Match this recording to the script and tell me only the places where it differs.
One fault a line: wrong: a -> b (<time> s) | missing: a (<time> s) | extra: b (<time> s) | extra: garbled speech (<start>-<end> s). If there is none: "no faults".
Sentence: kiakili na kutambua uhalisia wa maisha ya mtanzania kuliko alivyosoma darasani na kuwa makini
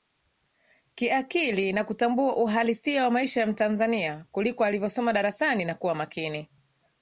no faults